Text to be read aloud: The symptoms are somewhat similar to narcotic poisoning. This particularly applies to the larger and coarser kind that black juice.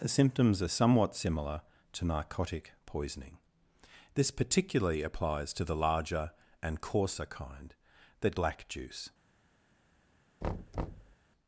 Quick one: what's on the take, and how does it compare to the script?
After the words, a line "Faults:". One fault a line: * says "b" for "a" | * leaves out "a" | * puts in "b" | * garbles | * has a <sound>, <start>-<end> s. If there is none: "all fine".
The symptoms are somewhat similar to narcotic poisoning. This particularly applies to the larger and coarser kind that black juice.
Faults:
* has a thud, 10.4-11.2 s